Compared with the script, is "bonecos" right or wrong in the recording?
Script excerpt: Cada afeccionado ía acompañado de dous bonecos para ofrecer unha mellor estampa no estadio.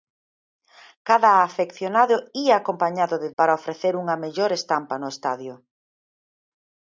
wrong